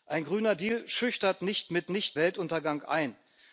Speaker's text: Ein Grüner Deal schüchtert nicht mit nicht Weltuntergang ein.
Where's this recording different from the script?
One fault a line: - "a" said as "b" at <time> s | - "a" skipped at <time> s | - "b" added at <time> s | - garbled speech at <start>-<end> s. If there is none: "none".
none